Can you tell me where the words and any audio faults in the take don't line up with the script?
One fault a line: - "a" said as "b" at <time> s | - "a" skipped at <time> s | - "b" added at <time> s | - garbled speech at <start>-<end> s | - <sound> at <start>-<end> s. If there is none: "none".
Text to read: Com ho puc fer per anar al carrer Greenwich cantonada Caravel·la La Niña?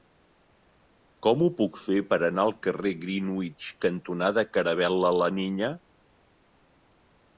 none